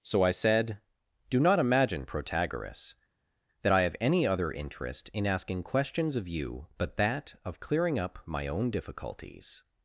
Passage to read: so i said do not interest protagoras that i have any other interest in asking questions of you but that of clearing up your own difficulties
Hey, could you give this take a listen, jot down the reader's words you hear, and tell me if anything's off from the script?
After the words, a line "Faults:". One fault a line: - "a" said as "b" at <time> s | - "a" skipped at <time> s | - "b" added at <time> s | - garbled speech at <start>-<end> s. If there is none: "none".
so i said do not imagine protagoras that i have any other interest in asking questions of you but that of clearing up my own difficulties
Faults:
- "interest" said as "imagine" at 1.6 s
- "your" said as "my" at 8.2 s